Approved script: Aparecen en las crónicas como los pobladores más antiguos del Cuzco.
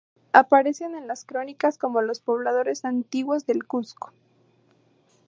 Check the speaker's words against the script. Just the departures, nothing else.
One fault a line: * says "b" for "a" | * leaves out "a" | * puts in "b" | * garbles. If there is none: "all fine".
* leaves out "más"